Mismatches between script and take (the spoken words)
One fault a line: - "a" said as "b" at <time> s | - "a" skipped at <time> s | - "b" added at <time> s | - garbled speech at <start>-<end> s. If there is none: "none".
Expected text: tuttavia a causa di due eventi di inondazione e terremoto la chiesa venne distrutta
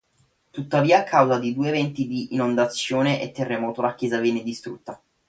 none